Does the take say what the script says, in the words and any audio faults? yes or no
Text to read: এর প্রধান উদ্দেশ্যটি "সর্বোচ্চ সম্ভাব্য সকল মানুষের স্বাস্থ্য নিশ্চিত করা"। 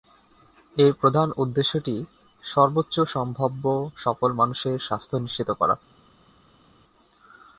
yes